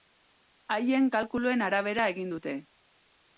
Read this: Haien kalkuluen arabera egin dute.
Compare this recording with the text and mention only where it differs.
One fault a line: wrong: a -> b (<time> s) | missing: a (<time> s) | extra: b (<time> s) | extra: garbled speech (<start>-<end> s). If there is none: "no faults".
no faults